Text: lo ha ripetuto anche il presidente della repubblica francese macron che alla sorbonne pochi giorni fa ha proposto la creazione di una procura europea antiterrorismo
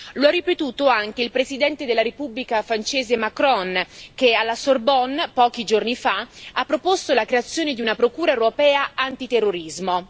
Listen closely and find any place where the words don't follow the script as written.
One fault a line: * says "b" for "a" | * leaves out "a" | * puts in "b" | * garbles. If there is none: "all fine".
all fine